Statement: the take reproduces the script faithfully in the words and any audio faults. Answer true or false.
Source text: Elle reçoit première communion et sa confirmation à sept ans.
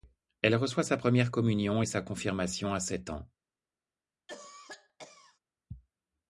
false